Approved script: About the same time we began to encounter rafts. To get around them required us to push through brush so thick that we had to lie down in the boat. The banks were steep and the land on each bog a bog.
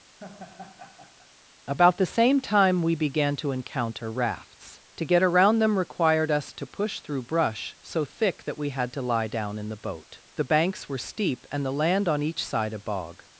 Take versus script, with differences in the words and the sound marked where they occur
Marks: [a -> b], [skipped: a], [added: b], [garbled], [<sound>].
[laugh] About the same time we began to encounter rafts. To get around them required us to push through brush so thick that we had to lie down in the boat. The banks were steep and the land on each [bog -> side] a bog.